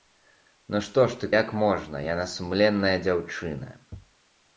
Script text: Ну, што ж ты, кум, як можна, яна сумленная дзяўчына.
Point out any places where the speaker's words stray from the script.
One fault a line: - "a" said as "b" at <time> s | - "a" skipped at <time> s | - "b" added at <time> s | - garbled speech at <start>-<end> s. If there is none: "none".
- "кум" skipped at 1.3 s